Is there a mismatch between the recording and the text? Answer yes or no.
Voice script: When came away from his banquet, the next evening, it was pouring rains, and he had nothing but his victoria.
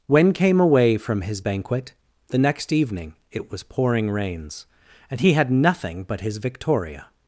no